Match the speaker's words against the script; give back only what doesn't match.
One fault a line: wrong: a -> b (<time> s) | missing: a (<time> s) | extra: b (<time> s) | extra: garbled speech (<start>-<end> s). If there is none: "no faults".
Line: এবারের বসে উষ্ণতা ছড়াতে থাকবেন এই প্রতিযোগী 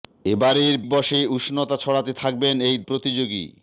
no faults